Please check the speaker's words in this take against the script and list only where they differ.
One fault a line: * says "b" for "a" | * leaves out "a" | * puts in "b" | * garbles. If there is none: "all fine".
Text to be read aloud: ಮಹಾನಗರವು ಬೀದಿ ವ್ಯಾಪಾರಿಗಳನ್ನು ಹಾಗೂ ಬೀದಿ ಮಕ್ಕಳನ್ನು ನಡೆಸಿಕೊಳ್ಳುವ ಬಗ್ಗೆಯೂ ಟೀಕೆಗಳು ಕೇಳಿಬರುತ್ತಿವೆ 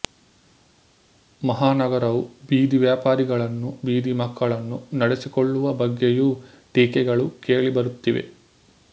* leaves out "ಹಾಗೂ"